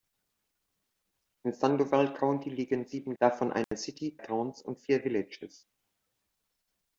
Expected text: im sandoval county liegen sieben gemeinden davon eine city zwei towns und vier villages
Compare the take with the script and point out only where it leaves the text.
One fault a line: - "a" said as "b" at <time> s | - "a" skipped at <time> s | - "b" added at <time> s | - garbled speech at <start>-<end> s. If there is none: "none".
- "gemeinden" skipped at 3.1 s
- "zwei" skipped at 4.2 s